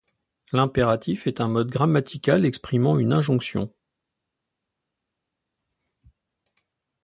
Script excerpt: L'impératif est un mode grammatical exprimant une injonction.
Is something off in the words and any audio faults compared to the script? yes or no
no